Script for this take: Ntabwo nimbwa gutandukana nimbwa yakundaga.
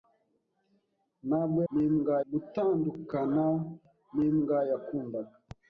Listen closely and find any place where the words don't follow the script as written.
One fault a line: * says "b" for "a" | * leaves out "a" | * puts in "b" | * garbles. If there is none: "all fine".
all fine